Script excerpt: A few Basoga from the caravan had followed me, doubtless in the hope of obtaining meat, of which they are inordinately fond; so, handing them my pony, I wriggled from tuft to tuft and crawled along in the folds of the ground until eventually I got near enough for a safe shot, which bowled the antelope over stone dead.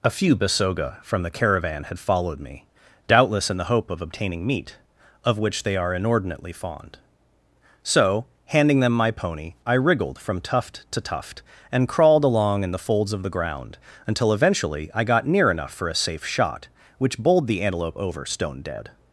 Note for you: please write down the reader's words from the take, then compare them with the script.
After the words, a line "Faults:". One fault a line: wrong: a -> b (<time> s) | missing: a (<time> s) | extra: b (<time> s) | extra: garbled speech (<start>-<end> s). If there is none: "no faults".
A few Basoga from the caravan had followed me, doubtless in the hope of obtaining meat, of which they are inordinately fond; so, handing them my pony, I wriggled from tuft to tuft and crawled along in the folds of the ground until eventually I got near enough for a safe shot, which bowled the antelope over stone dead.
Faults:
no faults